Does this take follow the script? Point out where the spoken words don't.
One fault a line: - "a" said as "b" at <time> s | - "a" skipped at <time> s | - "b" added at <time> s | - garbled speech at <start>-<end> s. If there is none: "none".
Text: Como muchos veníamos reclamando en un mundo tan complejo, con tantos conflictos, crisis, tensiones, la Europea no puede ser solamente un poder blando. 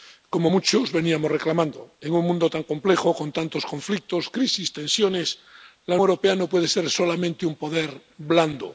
none